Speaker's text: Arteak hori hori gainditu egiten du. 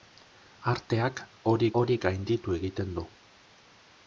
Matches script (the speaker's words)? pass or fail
pass